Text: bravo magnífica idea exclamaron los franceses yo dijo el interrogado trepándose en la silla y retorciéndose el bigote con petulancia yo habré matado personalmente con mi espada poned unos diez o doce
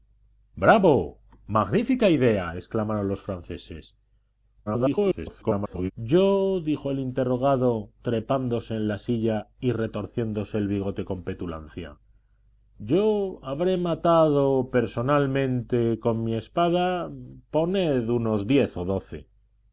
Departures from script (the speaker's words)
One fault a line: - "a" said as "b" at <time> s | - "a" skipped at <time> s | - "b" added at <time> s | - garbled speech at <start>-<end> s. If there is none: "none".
- garbled speech at 4.7-5.9 s